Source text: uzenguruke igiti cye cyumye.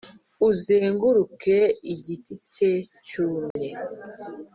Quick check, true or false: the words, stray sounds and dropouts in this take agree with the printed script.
false